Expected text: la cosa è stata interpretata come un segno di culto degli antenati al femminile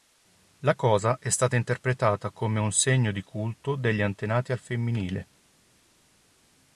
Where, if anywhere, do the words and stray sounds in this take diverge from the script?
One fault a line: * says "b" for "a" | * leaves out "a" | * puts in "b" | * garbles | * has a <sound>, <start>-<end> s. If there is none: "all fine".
all fine